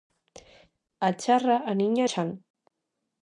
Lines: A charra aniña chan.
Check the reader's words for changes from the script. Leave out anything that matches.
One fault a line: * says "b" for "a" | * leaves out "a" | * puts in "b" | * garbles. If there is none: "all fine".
all fine